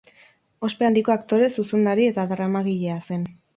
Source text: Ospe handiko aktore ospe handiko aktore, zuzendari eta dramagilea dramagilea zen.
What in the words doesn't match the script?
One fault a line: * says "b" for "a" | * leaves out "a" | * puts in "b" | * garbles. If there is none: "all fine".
* leaves out "ospe handiko aktore"
* leaves out "dramagilea"